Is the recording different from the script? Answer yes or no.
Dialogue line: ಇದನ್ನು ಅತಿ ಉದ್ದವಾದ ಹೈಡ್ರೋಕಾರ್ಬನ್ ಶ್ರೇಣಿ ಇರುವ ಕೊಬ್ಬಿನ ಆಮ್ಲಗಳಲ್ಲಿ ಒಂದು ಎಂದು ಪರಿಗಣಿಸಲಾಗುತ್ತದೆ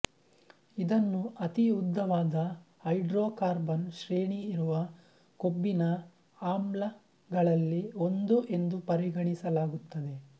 no